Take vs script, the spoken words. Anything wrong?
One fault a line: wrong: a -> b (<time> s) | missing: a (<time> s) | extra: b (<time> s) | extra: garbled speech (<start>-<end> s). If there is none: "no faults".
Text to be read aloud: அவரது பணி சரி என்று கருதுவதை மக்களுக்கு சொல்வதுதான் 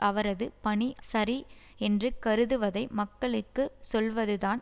no faults